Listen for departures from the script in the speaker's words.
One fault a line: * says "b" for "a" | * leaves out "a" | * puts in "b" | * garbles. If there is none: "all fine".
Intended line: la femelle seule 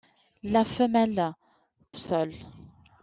all fine